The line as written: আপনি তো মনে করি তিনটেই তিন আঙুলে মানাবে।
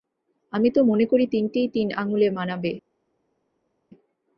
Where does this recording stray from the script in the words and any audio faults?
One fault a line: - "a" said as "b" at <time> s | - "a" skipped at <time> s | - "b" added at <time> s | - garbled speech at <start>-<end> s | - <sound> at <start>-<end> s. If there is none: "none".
- "আপনি" said as "আমি" at 0.5 s